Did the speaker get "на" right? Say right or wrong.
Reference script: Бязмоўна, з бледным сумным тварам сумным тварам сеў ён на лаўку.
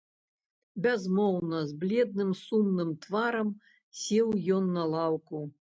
right